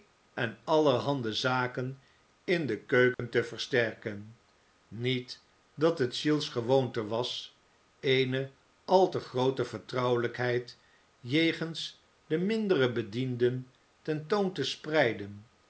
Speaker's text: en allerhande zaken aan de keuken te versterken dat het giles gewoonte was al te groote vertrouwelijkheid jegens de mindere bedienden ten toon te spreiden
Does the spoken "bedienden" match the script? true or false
true